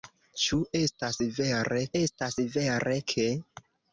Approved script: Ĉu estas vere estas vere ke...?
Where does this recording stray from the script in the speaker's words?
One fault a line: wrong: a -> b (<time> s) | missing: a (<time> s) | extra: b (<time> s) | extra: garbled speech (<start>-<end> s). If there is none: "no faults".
no faults